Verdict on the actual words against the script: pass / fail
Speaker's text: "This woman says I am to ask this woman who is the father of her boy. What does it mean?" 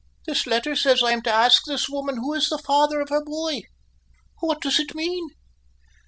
fail